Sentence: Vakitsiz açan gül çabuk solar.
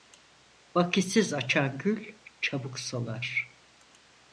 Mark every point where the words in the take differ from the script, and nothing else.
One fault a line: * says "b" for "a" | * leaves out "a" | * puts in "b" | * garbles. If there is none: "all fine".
all fine